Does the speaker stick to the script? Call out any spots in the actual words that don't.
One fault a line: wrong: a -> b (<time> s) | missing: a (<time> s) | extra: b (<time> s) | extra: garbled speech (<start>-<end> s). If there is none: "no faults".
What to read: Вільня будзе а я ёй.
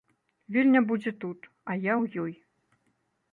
extra: тут (1.2 s)
extra: ў (2.0 s)